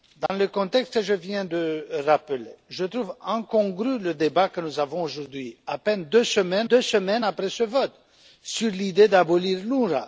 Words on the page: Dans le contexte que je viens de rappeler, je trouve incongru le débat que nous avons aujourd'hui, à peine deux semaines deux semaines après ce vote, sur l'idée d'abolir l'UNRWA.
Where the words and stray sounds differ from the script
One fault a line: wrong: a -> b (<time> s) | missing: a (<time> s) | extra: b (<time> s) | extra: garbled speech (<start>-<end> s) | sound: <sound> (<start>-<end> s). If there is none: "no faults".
sound: dropout (0.3-0.3 s)